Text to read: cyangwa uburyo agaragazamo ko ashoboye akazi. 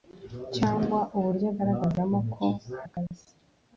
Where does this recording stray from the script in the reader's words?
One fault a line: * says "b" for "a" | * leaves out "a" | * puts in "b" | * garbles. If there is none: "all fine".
* leaves out "ashoboye"